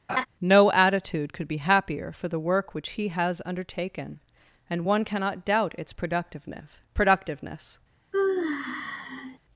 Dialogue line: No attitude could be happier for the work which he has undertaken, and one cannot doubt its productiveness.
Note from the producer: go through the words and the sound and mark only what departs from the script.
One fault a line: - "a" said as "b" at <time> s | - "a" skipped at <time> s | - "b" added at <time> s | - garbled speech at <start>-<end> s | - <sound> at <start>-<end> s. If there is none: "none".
- laugh at 0.1-0.3 s
- "productiveness" added at 6.9 s
- sigh at 8.1-9.4 s